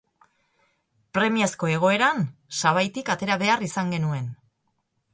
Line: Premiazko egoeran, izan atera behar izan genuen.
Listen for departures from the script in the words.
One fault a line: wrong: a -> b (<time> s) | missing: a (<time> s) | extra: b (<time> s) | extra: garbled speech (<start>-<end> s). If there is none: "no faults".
wrong: izan -> sabaitik (2.6 s)